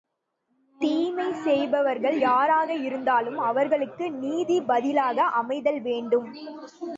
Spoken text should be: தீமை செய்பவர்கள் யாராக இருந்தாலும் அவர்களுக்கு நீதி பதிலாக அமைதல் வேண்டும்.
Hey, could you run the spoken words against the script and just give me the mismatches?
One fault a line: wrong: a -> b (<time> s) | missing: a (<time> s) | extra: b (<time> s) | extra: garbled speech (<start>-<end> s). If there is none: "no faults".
no faults